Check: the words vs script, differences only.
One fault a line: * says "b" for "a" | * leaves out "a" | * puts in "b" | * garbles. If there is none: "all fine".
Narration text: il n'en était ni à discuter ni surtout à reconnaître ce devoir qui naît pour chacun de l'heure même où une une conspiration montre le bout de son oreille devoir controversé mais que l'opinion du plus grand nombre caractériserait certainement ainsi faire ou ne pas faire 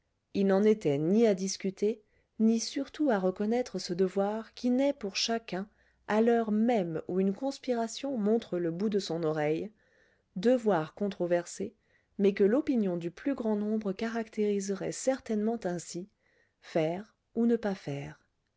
* says "à" for "de"
* leaves out "une"